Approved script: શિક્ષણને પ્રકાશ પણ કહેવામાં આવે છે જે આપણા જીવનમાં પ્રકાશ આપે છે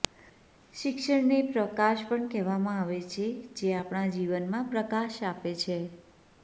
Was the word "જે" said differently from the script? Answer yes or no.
no